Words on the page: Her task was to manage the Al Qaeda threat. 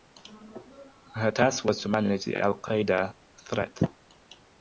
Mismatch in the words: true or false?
false